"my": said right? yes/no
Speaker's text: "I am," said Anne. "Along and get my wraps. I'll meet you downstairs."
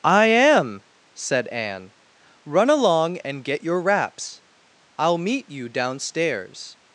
no